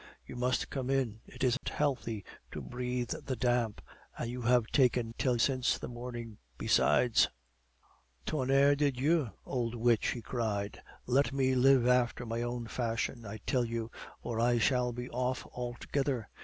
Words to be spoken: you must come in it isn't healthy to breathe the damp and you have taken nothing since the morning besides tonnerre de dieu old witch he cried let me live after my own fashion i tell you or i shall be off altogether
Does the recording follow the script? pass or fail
fail